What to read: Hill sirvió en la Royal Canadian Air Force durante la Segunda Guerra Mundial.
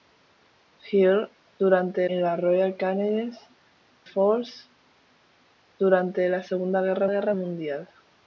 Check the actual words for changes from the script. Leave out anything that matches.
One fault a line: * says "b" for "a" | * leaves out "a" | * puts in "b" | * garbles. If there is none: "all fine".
* says "durante" for "sirvió"
* leaves out "Air"
* puts in "Guerra"